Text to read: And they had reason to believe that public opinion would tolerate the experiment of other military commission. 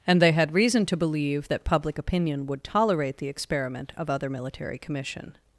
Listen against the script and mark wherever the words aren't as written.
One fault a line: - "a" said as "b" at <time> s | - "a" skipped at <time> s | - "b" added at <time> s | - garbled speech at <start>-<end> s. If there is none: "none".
none